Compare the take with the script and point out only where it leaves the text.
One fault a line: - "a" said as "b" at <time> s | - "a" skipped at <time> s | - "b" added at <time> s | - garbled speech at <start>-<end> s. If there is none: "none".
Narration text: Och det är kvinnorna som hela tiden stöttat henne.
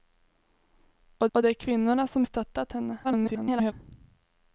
- "och" added at 1.3 s
- "hela tiden" skipped at 2.2 s
- garbled speech at 3.0-3.7 s